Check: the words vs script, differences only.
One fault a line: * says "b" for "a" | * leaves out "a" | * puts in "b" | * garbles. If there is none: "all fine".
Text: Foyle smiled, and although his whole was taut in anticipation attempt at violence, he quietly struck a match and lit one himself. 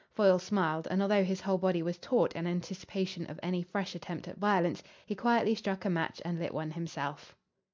* puts in "body"
* puts in "of any fresh"